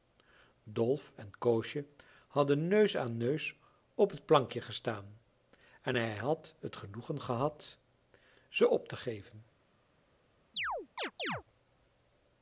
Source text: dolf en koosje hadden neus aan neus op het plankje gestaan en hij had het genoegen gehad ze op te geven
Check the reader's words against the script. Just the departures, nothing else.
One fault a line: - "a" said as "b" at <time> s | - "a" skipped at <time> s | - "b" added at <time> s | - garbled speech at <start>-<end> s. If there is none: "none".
none